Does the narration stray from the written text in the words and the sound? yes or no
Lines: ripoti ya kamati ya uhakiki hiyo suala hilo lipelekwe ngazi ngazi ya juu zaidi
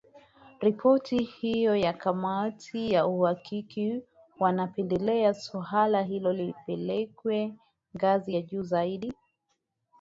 yes